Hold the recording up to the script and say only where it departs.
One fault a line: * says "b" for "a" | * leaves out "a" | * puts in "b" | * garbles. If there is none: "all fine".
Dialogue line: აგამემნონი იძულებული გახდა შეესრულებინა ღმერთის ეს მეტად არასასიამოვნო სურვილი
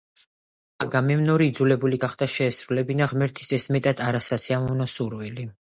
all fine